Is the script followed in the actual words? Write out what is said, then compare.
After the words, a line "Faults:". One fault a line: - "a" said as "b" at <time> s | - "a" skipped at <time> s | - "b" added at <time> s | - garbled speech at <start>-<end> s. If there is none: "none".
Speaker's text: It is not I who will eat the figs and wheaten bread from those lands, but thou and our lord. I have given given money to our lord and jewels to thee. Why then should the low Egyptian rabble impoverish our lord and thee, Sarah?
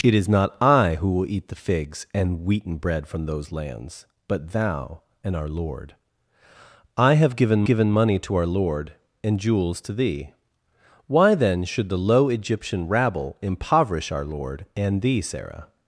It is not I who will eat the figs and wheaten bread from those lands, but thou and our lord. I have given given money to our lord and jewels to thee. Why then should the low Egyptian rabble impoverish our lord and thee, Sarah?
Faults:
none